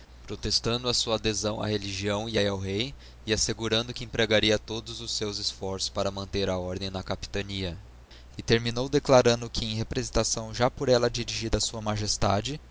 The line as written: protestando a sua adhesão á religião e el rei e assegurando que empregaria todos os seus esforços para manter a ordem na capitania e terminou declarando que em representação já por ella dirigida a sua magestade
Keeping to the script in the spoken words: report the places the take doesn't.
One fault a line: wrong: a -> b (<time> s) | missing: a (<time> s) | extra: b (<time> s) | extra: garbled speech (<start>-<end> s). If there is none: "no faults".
no faults